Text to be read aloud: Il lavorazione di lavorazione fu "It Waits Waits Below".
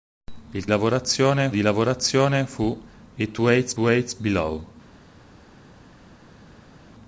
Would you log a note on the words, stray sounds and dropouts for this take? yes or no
no